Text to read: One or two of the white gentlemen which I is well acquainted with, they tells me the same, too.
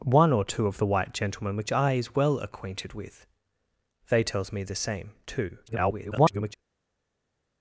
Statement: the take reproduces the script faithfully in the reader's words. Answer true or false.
false